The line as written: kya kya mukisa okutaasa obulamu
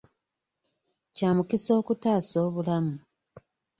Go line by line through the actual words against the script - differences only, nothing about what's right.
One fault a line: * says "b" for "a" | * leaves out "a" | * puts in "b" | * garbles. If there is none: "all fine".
* leaves out "kya"